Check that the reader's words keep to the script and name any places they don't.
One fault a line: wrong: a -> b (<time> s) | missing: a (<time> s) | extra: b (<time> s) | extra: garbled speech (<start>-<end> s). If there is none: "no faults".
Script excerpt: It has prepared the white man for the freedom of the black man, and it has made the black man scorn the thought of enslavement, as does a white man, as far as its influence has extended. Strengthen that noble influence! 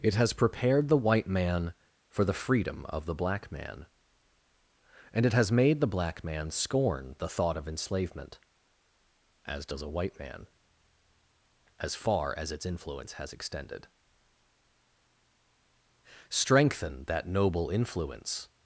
no faults